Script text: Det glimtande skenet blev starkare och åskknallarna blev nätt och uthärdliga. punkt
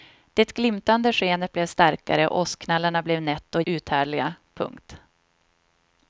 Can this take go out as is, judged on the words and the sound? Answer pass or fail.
pass